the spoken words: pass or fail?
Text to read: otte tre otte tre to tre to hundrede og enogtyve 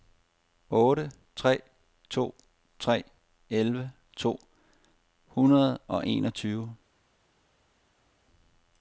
fail